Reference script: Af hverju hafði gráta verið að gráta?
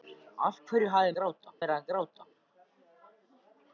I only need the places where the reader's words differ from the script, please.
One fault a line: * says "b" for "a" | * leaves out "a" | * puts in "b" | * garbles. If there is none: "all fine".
all fine